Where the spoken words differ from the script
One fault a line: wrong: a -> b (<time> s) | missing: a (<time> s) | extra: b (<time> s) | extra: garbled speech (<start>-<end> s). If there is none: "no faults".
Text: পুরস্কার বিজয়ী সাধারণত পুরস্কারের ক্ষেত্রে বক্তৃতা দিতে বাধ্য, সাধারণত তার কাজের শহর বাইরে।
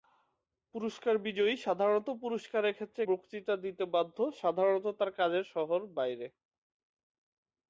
no faults